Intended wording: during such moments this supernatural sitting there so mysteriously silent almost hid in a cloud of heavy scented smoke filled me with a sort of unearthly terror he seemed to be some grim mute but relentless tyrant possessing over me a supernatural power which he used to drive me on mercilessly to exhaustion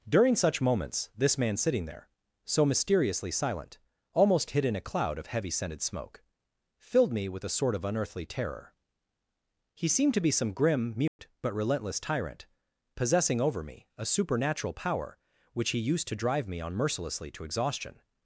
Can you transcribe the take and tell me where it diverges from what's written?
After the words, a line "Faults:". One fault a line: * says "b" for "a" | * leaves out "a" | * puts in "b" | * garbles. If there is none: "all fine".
during such moments this man sitting there so mysteriously silent almost hid in a cloud of heavy scented smoke filled me with a sort of unearthly terror he seemed to be some grim mute but relentless tyrant possessing over me a supernatural power which he used to drive me on mercilessly to exhaustion
Faults:
* says "man" for "supernatural"